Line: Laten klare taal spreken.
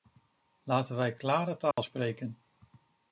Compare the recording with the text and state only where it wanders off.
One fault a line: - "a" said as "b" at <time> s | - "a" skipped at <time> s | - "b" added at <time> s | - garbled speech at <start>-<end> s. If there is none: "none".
- "wij" added at 0.9 s